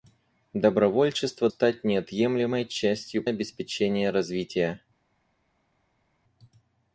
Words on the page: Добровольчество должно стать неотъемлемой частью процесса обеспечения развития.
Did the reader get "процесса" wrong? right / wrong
wrong